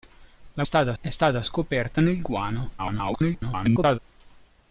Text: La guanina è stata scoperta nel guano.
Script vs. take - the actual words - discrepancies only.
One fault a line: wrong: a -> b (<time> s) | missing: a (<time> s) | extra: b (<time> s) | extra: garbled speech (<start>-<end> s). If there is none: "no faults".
wrong: guanina -> stata (0.6 s)
extra: garbled speech (2.8-4.0 s)